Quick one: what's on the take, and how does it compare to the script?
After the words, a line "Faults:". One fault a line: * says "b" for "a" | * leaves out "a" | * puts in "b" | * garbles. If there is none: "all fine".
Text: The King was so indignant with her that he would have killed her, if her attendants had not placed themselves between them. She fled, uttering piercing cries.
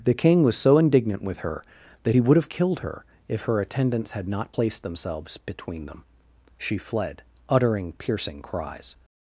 The King was so indignant with her that he would have killed her, if her attendants had not placed themselves between them. She fled, uttering piercing cries.
Faults:
all fine